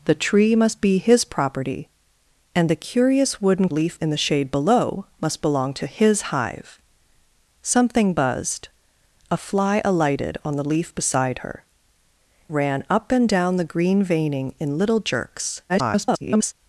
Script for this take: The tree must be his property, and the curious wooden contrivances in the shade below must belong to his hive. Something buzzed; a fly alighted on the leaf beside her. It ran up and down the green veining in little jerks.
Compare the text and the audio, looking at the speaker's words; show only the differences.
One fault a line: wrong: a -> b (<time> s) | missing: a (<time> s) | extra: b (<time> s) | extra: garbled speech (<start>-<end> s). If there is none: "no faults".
wrong: contrivances -> leaf (3.7 s)
missing: It (11.6 s)
extra: garbled speech (15.7-16.5 s)